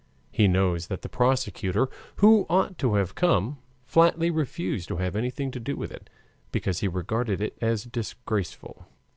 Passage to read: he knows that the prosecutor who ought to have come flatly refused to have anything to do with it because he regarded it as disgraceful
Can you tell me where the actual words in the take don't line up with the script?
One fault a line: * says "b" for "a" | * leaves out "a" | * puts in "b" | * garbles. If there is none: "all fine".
all fine